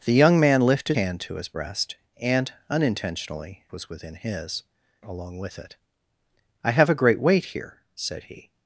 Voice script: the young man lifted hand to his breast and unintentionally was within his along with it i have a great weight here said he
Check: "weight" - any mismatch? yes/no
no